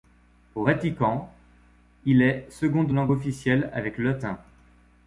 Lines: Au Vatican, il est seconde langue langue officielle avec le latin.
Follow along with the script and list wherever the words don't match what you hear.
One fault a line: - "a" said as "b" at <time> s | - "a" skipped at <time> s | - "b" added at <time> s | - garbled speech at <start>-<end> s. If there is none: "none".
- "langue" skipped at 3.1 s